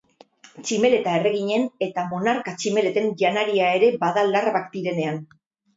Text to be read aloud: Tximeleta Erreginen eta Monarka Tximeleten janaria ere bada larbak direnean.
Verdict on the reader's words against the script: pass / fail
pass